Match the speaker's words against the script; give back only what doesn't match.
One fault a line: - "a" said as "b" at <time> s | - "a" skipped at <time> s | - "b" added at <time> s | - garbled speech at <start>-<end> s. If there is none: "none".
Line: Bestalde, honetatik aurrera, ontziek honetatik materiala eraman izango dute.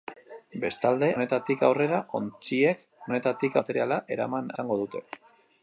none